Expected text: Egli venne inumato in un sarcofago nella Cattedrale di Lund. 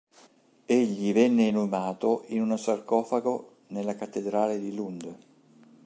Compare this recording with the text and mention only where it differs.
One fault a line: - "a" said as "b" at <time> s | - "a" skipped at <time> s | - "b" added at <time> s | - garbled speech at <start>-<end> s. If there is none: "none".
none